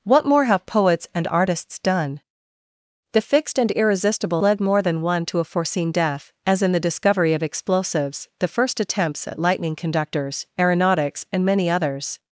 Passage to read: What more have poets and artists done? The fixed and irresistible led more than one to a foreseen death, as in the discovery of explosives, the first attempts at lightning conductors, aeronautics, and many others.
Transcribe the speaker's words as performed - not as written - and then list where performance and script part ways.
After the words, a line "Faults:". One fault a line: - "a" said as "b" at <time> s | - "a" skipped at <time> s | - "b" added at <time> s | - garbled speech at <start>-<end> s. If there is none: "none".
What more have poets and artists done? The fixed and irresistible led more than one to a foreseen death, as in the discovery of explosives, the first attempts at lightning conductors, aeronautics, and many others.
Faults:
none